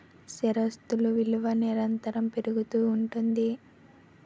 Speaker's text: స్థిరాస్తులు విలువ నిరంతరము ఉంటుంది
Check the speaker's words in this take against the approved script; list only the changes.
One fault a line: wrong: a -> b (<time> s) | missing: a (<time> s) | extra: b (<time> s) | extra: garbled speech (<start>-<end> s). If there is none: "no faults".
extra: పెరుగుతూ (2.3 s)